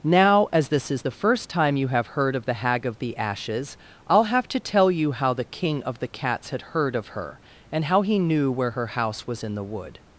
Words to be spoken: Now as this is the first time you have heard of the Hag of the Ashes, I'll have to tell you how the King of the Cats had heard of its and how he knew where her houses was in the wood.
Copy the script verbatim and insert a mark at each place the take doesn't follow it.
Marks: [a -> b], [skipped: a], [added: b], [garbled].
Now as this is the first time you have heard of the Hag of the Ashes, I'll have to tell you how the King of the Cats had heard of [its -> her] and how he knew where her [houses -> house] was in the wood.